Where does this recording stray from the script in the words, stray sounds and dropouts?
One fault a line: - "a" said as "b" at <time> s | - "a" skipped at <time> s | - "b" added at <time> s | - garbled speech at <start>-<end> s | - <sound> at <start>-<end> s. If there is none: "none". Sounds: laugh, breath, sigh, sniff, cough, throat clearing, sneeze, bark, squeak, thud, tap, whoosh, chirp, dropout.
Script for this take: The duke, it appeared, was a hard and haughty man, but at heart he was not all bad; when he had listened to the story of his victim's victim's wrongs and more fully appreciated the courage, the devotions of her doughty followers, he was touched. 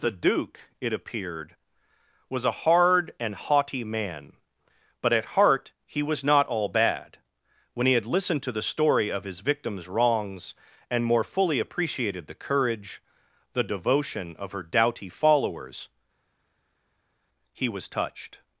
- "victim's" skipped at 9.9 s
- "devotions" said as "devotion" at 13.6 s